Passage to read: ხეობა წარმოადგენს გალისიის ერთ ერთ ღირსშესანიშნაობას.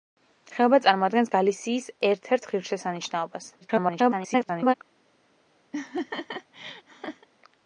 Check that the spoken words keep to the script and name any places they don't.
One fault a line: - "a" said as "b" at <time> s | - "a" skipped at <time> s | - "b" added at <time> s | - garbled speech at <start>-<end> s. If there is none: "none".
- garbled speech at 3.6-4.7 s